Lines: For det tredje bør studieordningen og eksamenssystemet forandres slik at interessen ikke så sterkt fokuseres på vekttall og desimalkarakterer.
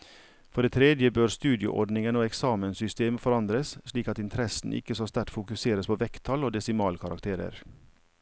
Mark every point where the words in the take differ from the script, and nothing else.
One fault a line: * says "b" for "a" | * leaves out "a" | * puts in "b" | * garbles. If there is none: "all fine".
all fine